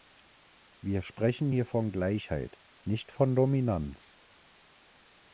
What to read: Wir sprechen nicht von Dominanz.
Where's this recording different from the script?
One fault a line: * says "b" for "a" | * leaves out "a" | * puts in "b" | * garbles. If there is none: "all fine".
* puts in "hier von Gleichheit"